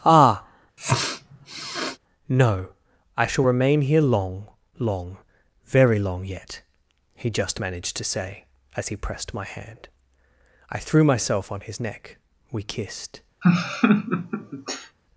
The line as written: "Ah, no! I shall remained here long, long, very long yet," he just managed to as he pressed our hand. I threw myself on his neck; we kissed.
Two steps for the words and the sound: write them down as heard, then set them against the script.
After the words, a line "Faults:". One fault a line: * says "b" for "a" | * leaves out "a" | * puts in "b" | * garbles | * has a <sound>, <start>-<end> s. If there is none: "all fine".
"Ah, no! I shall remain here long, long, very long yet," he just managed to say, as he pressed my hand. I threw myself on his neck; we kissed.
Faults:
* has a sniff, 0.8-2.0 s
* says "remain" for "remained"
* puts in "say"
* says "my" for "our"
* has a laugh, 13.4-15.0 s